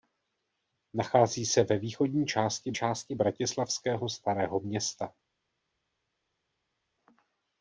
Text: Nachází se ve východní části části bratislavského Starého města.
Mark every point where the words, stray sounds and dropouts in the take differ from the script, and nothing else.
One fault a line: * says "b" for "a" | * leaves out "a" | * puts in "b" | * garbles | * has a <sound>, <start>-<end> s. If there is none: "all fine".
all fine